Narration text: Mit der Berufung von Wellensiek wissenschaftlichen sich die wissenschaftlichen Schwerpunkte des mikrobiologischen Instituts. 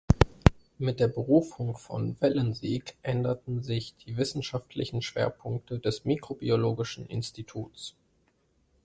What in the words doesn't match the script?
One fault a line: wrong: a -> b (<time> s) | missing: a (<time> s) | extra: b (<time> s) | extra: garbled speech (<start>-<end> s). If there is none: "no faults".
wrong: wissenschaftlichen -> änderten (3.0 s)